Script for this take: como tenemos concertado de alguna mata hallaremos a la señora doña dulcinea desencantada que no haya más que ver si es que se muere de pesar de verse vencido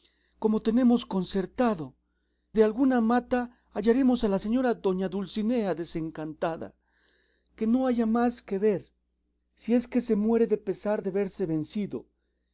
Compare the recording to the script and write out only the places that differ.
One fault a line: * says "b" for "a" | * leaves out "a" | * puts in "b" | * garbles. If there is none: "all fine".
all fine